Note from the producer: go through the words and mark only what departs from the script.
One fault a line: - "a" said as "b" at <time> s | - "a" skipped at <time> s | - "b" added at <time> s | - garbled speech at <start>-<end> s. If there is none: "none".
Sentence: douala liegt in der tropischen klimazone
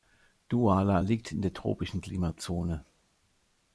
none